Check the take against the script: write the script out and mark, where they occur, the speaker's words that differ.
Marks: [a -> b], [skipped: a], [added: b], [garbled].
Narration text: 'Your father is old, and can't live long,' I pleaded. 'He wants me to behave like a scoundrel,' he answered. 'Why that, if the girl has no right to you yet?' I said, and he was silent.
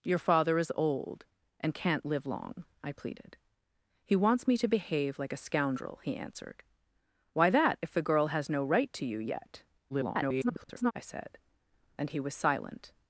'Your father is old, and can't live long,' I pleaded. 'He wants me to behave like a scoundrel,' he answered. 'Why that, if the girl has no right to you yet?' [garbled] I said, and he was silent.